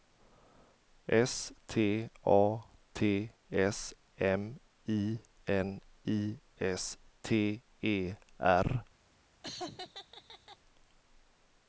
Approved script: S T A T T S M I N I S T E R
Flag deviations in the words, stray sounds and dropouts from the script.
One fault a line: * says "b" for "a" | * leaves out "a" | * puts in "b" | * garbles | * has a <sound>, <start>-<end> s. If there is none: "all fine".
* leaves out "T"
* has a laugh, 9.4-10.6 s